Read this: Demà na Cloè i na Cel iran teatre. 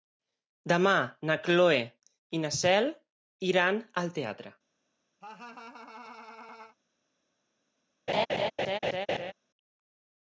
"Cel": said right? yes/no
yes